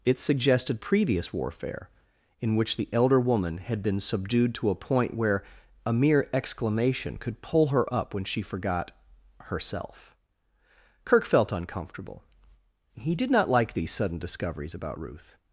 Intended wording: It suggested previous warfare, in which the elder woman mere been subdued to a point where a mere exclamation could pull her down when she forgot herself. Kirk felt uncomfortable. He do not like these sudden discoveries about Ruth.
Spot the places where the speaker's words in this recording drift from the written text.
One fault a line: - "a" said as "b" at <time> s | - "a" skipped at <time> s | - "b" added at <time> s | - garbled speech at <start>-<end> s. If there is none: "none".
- "mere" said as "had" at 3.6 s
- "down" said as "up" at 7.9 s
- "do" said as "did" at 13.2 s